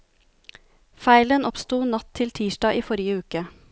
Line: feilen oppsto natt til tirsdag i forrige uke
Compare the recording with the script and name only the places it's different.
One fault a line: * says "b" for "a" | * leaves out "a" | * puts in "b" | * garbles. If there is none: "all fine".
all fine